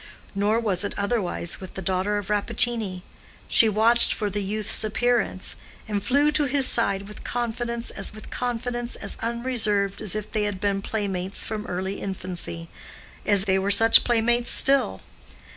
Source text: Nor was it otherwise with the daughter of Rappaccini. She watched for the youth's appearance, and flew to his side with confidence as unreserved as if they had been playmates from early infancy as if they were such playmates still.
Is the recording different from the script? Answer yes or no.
yes